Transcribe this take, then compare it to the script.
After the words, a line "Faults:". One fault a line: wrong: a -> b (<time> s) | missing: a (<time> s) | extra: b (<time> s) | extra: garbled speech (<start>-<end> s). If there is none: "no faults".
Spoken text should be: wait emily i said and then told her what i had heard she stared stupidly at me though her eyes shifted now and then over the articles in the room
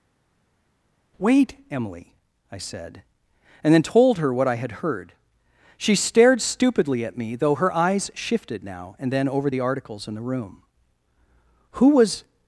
wait emily i said and then told her what i had heard she stared stupidly at me though her eyes shifted now and then over the articles in the room who was
Faults:
extra: who was (11.7 s)